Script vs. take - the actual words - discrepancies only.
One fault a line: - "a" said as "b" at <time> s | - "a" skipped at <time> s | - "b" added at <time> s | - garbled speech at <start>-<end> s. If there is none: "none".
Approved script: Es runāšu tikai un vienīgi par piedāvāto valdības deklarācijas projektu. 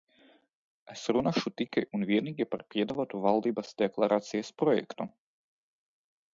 none